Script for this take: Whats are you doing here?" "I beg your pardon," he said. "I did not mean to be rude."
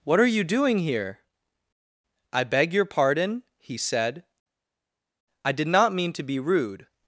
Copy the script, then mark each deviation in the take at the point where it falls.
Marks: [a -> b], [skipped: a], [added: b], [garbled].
[Whats -> What] are you doing here?" "I beg your pardon," he said. "I did not mean to be rude."